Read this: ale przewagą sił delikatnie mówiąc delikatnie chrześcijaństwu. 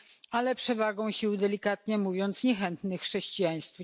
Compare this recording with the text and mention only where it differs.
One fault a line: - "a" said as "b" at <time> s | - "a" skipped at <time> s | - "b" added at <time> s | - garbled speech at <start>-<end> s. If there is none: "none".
- "delikatnie" said as "niechętnych" at 2.4 s